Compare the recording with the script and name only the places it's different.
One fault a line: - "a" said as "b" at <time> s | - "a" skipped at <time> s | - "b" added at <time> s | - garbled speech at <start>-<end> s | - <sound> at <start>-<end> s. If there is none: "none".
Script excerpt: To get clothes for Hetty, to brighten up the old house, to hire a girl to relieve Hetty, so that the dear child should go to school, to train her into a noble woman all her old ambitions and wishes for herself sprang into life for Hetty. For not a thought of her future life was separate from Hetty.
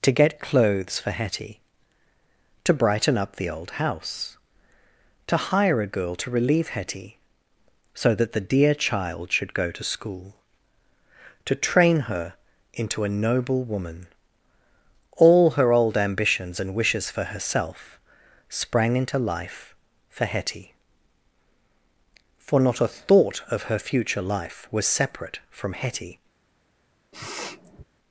- sniff at 27.1-27.8 s